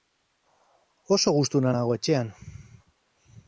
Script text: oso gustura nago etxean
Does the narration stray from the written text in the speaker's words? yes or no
no